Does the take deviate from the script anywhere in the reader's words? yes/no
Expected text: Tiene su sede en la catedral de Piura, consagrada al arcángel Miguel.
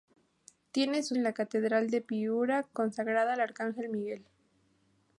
yes